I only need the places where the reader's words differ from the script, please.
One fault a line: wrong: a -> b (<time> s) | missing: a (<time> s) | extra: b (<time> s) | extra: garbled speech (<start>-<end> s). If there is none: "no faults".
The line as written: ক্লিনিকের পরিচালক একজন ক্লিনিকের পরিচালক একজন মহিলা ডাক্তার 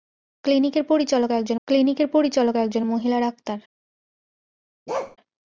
no faults